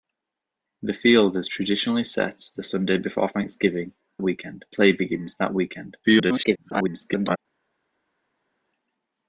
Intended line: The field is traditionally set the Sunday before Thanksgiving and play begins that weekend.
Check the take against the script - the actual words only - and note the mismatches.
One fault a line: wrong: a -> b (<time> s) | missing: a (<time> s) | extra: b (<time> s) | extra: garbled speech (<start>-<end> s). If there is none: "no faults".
wrong: and -> weekend (4.2 s)
extra: garbled speech (6.0-7.4 s)